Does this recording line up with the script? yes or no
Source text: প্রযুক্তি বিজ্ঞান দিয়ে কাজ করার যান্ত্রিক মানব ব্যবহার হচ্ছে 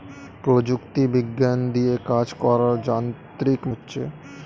no